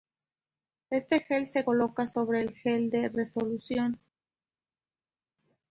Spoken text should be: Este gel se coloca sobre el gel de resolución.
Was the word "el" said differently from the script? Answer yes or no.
no